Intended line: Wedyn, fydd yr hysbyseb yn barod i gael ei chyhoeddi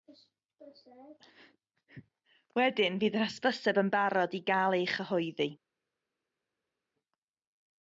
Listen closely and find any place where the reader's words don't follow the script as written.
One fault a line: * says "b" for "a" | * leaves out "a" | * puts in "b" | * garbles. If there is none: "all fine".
all fine